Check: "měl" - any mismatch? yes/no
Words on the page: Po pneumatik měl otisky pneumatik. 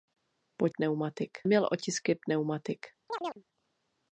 no